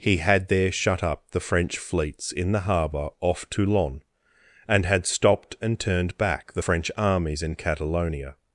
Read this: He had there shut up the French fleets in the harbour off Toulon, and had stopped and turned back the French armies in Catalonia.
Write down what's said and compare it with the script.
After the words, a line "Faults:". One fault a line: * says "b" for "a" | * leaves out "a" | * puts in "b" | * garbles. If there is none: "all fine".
He had there shut up the French fleets in the harbour off Toulon, and had stopped and turned back the French armies in Catalonia.
Faults:
all fine